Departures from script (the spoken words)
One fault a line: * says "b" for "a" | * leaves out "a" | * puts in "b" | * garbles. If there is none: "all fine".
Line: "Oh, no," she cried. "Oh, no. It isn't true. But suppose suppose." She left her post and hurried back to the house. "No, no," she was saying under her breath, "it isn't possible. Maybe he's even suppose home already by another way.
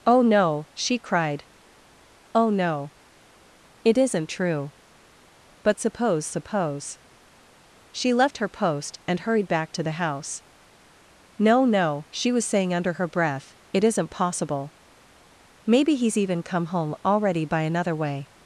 * says "come" for "suppose"